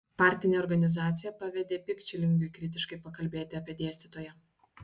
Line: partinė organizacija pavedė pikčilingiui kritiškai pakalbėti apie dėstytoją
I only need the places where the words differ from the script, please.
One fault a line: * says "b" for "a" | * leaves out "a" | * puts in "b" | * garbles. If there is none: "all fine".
all fine